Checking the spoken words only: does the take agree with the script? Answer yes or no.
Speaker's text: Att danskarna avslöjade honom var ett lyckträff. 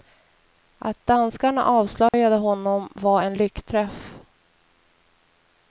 no